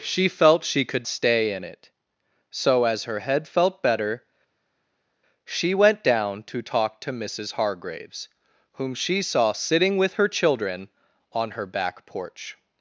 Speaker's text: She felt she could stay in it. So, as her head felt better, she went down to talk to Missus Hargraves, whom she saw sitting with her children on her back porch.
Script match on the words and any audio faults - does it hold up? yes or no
yes